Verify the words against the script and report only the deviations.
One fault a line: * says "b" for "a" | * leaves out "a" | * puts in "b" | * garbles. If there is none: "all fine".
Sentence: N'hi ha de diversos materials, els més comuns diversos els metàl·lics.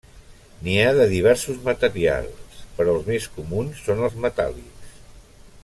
* puts in "però"
* says "són" for "diversos"